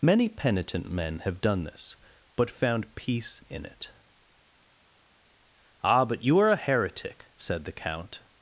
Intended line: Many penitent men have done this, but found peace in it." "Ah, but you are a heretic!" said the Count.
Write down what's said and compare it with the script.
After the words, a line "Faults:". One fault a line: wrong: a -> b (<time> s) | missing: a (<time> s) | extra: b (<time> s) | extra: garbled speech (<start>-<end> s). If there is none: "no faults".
Many penitent men have done this, but found peace in it." "Ah, but you are a heretic!" said the Count.
Faults:
no faults